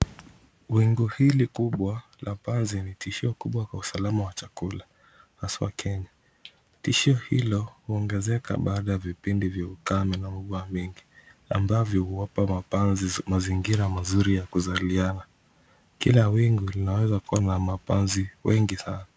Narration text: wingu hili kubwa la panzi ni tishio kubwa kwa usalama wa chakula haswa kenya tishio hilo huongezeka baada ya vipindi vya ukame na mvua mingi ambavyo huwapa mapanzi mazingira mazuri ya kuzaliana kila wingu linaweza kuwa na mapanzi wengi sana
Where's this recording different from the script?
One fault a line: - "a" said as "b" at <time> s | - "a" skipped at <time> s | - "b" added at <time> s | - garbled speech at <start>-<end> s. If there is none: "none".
none